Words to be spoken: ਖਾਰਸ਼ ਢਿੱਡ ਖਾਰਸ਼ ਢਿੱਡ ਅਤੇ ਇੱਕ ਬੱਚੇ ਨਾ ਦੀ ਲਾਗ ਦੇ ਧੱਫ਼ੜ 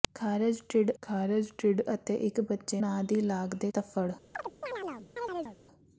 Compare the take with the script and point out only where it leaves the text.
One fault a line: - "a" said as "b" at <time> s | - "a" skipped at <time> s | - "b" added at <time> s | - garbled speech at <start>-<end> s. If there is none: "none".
none